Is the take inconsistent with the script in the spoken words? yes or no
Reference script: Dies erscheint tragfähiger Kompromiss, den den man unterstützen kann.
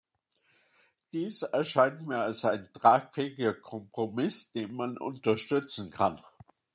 yes